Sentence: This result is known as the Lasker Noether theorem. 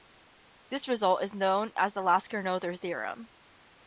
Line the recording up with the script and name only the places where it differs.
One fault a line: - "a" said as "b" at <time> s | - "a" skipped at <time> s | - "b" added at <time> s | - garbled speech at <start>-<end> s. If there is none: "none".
none